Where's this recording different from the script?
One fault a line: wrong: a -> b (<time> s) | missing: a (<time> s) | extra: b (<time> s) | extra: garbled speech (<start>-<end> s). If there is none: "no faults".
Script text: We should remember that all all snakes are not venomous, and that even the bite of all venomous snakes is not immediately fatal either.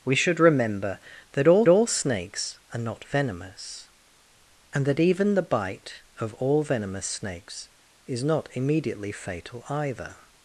no faults